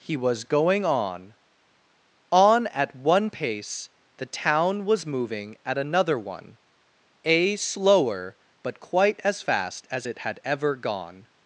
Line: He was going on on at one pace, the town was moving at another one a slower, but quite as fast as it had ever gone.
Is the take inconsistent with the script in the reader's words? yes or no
no